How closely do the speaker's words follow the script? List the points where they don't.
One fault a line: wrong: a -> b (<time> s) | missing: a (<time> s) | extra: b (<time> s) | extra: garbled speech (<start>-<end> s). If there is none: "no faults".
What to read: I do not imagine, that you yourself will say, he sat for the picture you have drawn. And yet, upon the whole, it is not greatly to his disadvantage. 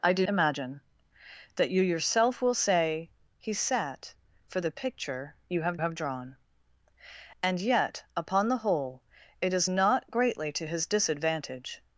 missing: not (0.2 s)
extra: have (5.8 s)